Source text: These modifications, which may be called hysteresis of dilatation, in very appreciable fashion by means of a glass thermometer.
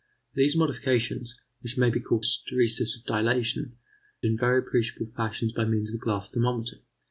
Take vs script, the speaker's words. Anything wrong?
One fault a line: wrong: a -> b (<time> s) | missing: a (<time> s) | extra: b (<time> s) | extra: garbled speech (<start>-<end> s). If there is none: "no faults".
no faults